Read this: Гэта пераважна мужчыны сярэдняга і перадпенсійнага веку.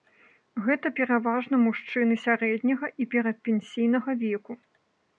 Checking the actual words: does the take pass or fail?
pass